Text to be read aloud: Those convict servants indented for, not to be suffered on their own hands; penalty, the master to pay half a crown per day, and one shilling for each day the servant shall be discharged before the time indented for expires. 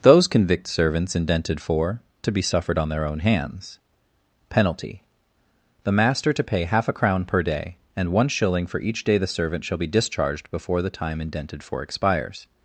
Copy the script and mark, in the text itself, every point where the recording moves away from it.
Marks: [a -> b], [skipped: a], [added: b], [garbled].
Those convict servants indented for, [skipped: not] to be suffered on their own hands; penalty, the master to pay half a crown per day, and one shilling for each day the servant shall be discharged before the time indented for expires.